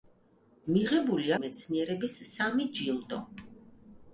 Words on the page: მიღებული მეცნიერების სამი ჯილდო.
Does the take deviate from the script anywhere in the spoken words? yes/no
no